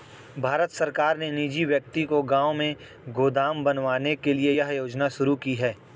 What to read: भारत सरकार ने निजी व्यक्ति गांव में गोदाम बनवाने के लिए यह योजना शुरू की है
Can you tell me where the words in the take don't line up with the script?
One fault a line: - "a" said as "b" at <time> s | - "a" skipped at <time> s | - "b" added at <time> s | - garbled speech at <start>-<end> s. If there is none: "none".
- "को" added at 2.0 s